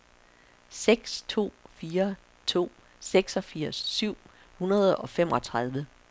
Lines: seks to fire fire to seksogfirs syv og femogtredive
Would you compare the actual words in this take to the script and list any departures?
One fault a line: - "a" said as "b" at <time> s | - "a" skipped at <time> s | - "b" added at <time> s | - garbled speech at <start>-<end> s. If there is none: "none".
- "fire" skipped at 2.1 s
- "hundrede" added at 4.6 s